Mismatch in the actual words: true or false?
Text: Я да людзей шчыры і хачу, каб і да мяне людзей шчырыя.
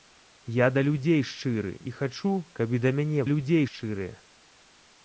false